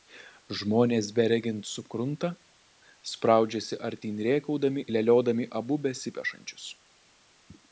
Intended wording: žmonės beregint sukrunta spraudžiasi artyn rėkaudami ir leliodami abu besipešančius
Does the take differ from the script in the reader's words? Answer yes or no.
yes